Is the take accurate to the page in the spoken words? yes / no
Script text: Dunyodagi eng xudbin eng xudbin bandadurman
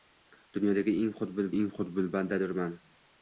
yes